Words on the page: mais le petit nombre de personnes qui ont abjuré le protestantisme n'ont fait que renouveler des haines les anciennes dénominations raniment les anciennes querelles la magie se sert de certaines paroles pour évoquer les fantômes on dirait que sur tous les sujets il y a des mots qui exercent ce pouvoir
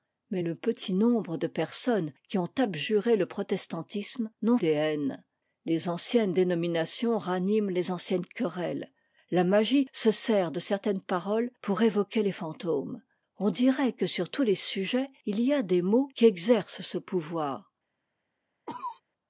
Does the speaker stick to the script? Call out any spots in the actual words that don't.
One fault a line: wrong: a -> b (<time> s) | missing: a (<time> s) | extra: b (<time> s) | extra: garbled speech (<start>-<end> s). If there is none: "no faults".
missing: fait que renouveler (4.6 s)